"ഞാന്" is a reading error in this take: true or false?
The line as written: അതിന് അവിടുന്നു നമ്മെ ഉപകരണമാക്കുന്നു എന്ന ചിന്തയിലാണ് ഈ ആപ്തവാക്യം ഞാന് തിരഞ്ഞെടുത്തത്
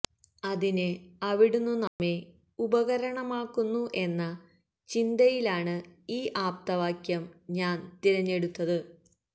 false